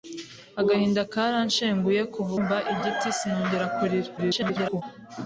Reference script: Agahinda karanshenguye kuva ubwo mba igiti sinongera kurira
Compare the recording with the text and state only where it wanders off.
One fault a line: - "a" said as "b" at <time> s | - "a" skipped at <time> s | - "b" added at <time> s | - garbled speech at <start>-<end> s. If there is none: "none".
- "ubwo" skipped at 2.3 s
- garbled speech at 4.2-4.8 s